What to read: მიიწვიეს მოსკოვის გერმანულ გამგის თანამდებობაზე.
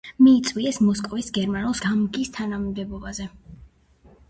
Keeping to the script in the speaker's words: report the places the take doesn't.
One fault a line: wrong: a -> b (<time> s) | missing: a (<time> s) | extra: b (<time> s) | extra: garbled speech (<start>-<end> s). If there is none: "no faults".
no faults